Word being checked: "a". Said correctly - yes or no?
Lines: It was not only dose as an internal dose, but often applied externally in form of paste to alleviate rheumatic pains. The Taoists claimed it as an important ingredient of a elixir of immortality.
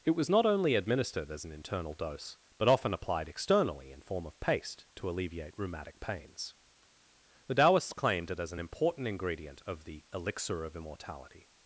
no